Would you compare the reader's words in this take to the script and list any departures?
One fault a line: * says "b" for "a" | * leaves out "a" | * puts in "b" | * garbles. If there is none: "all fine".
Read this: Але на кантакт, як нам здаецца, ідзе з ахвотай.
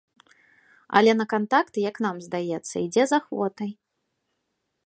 all fine